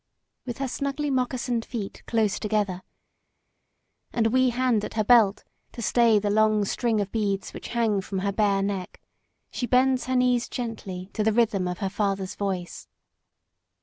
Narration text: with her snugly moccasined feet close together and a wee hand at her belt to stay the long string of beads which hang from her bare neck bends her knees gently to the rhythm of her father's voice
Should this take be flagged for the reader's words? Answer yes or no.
yes